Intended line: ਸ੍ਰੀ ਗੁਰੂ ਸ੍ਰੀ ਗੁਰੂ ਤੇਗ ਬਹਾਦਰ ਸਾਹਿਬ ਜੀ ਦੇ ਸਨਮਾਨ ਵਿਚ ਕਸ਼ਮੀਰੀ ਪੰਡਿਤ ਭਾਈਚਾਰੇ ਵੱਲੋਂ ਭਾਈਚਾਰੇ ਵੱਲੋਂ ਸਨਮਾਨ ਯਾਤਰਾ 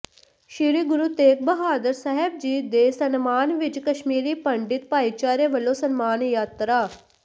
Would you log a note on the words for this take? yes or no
yes